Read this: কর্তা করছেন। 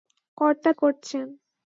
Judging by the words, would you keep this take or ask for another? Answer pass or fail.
pass